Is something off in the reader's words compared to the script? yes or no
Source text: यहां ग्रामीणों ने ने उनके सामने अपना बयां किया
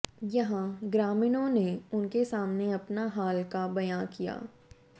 yes